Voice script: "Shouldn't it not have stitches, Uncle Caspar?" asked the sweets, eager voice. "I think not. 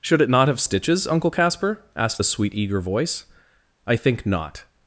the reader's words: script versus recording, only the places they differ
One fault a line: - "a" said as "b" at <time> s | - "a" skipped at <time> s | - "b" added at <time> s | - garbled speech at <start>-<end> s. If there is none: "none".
- "Shouldn't" said as "Should" at 0.0 s
- "sweets" said as "sweet" at 2.2 s